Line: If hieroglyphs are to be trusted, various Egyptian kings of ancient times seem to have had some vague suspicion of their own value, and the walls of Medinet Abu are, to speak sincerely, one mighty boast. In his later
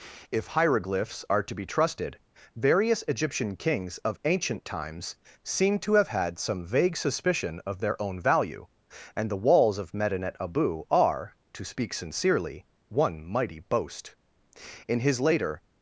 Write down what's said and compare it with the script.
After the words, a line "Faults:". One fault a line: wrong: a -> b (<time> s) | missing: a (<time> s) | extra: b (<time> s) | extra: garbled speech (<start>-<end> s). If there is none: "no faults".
If hieroglyphs are to be trusted, various Egyptian kings of ancient times seem to have had some vague suspicion of their own value, and the walls of Medinet Abu are, to speak sincerely, one mighty boast. In his later
Faults:
no faults